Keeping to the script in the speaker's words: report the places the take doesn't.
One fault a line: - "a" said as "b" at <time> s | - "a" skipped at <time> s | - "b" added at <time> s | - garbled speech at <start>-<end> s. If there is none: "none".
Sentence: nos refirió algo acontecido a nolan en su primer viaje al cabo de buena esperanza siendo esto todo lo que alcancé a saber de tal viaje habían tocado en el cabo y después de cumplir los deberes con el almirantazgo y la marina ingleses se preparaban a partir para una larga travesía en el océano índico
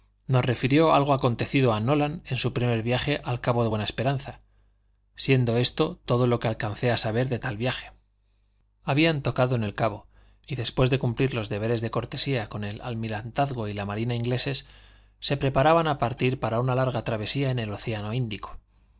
- "de cortesía" added at 11.8 s